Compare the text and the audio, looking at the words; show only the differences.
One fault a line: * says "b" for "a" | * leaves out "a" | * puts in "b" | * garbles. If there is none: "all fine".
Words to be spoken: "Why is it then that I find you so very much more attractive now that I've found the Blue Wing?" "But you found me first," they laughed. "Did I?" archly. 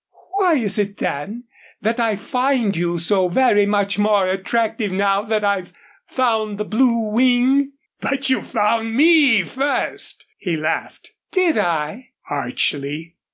* says "he" for "they"